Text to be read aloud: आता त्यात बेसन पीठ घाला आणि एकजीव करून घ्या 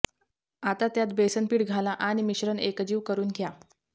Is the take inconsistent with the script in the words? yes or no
yes